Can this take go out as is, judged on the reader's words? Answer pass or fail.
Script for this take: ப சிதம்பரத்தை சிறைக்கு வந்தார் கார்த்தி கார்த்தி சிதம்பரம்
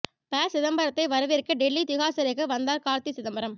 fail